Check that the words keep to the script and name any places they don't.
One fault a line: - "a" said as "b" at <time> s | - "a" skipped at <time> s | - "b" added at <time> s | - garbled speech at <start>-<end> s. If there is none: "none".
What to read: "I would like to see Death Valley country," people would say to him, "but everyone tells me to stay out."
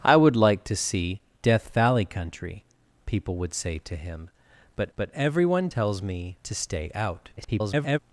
- "but" added at 5.0 s
- garbled speech at 7.4-8.0 s